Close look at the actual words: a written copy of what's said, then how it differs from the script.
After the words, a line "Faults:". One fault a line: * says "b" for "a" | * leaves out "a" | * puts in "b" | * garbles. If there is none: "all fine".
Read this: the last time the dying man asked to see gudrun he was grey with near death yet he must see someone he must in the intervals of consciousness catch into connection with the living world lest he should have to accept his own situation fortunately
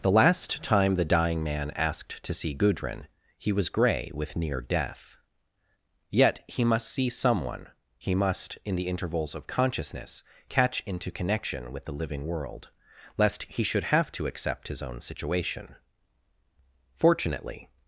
the last time the dying man asked to see gudrun he was grey with near death yet he must see someone he must in the intervals of consciousness catch into connection with the living world lest he should have to accept his own situation fortunately
Faults:
all fine